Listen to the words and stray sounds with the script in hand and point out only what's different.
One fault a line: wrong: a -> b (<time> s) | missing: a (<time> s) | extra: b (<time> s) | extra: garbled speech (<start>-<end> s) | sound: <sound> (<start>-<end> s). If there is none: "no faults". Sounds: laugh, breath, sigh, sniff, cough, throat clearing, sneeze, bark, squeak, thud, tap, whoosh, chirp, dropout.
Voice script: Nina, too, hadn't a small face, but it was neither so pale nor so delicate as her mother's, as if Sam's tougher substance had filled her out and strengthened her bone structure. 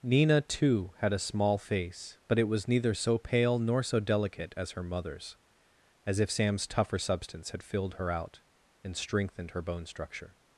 wrong: hadn't -> had (1.0 s)